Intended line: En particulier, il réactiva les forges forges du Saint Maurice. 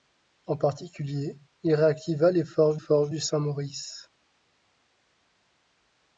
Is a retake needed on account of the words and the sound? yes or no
no